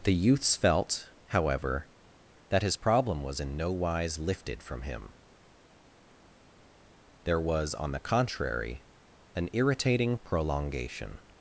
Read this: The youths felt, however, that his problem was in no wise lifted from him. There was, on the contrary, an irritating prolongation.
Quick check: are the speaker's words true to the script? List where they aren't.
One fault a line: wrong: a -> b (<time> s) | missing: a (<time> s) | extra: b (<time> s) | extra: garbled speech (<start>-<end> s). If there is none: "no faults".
no faults